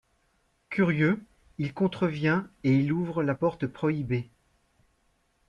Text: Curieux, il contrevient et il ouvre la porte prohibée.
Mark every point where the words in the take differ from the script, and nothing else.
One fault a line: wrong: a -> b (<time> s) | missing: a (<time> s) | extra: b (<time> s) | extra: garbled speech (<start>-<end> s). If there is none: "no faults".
no faults